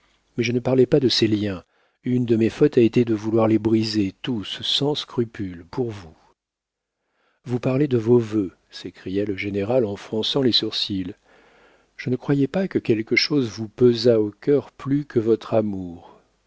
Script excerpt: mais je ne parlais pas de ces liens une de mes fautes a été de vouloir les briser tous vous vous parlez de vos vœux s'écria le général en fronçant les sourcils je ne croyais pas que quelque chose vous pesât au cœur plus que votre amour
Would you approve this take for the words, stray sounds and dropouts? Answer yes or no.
no